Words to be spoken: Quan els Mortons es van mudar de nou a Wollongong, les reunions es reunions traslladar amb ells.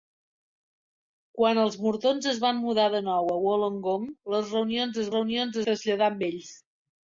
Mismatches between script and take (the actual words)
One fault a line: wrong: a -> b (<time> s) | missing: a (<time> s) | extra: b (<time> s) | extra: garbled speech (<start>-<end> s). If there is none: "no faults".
no faults